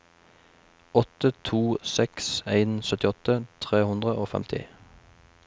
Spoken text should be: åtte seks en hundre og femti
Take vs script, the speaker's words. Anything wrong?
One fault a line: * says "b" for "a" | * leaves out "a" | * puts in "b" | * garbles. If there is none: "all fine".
* puts in "to"
* puts in "syttiåtte tre"